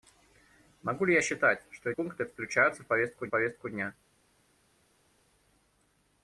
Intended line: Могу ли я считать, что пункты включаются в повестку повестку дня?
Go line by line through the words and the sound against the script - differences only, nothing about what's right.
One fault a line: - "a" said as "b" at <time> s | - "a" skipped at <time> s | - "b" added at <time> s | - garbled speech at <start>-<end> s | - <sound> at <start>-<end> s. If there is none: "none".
none